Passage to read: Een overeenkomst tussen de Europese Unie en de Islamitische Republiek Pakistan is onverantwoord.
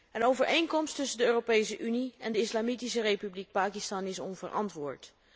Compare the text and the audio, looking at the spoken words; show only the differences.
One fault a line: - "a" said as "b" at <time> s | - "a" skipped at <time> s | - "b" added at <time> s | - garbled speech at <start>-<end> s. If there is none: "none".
none